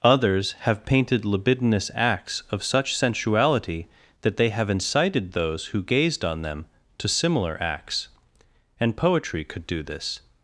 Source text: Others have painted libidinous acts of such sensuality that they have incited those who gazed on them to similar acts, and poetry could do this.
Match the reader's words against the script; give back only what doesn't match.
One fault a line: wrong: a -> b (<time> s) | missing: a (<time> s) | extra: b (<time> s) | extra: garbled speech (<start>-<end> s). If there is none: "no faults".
no faults